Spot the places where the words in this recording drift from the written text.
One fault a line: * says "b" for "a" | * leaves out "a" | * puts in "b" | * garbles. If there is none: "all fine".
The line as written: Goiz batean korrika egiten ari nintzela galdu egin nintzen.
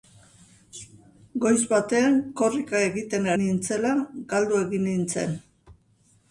* leaves out "ari"